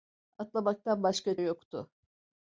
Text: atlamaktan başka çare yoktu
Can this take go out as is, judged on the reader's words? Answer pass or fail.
fail